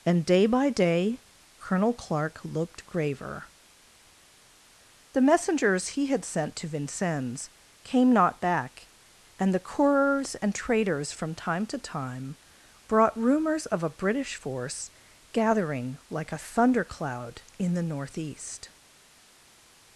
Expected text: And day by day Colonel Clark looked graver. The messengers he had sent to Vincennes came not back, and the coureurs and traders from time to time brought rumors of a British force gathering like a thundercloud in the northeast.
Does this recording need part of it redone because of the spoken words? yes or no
no